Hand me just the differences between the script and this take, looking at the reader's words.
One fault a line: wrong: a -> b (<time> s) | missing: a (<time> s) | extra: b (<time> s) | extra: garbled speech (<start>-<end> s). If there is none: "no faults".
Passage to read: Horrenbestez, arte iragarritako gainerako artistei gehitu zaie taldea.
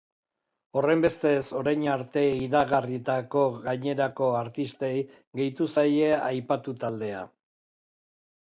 extra: orain (1.6 s)
extra: aipatu (6.2 s)